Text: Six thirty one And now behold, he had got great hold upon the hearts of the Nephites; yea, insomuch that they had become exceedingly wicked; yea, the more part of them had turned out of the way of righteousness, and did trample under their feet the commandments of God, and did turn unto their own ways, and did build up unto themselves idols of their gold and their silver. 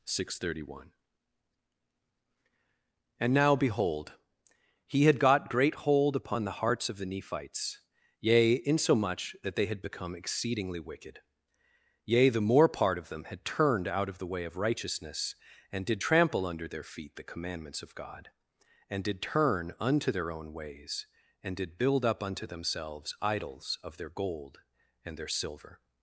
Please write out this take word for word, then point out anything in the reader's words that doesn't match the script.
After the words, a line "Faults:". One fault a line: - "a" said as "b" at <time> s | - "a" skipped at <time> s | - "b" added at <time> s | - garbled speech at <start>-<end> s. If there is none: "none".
Six thirty one And now behold, he had got great hold upon the hearts of the Nephites; yea, insomuch that they had become exceedingly wicked; yea, the more part of them had turned out of the way of righteousness, and did trample under their feet the commandments of God, and did turn unto their own ways, and did build up unto themselves idols of their gold and their silver.
Faults:
none